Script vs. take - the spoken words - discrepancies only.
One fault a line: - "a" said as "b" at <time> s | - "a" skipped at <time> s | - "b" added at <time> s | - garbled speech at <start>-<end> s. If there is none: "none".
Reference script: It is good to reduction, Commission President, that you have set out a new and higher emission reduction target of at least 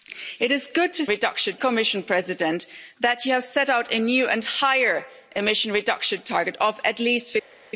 none